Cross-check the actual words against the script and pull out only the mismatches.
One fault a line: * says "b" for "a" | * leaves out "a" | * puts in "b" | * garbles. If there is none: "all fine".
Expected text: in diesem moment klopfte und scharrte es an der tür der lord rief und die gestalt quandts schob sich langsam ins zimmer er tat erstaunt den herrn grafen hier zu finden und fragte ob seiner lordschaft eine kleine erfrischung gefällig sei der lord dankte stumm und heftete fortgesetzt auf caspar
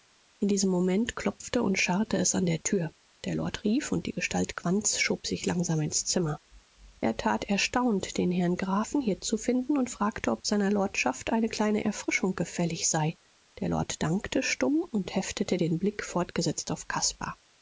* puts in "den blick"